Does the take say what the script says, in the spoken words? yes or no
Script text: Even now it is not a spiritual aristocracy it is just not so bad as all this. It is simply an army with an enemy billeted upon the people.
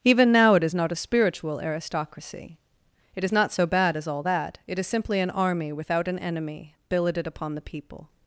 no